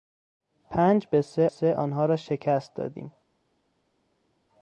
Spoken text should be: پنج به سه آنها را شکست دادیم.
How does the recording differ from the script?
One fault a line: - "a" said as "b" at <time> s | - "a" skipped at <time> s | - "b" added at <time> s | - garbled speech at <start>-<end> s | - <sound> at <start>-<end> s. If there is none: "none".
- "سه" added at 1.5 s